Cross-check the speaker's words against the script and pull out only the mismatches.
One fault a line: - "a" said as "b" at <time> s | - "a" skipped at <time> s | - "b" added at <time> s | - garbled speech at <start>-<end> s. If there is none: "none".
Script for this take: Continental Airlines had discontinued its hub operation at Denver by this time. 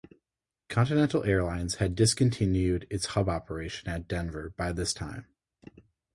none